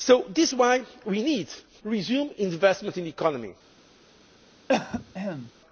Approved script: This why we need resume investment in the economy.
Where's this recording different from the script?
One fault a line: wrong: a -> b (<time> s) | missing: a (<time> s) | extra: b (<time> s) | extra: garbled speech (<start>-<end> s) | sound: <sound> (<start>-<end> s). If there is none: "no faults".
sound: cough (4.7-5.5 s)